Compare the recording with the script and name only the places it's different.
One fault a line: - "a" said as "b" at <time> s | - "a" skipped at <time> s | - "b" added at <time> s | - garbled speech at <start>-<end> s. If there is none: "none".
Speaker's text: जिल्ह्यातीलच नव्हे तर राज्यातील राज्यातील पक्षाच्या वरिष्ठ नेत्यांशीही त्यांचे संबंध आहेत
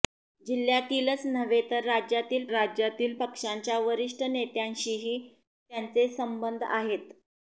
none